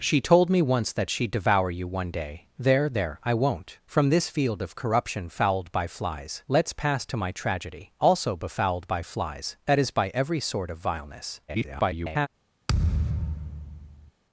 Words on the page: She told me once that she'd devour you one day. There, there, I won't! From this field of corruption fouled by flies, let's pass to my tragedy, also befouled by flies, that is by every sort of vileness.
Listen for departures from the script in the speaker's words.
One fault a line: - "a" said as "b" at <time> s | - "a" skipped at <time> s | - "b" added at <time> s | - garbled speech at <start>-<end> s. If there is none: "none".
- garbled speech at 11.5-12.3 s